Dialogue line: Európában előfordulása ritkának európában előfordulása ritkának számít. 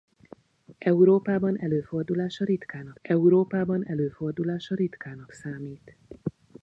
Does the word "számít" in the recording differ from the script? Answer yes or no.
no